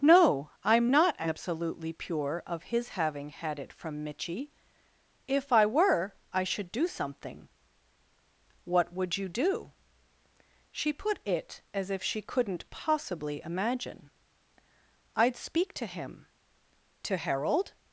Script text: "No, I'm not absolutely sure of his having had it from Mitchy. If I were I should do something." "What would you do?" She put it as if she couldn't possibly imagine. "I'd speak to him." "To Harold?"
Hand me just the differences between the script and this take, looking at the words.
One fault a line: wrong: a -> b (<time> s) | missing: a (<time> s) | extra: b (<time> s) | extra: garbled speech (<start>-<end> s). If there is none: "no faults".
wrong: sure -> pure (1.9 s)